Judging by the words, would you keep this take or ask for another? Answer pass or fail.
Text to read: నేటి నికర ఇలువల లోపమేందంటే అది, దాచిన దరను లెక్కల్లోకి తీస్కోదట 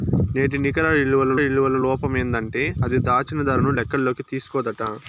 fail